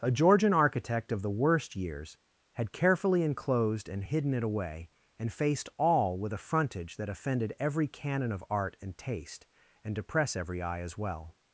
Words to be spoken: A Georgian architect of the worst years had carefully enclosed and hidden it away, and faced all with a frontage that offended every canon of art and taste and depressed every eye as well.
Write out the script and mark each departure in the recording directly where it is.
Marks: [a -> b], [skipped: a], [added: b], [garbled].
A Georgian architect of the worst years had carefully enclosed and hidden it away, and faced all with a frontage that offended every canon of art and taste and [depressed -> depress] every eye as well.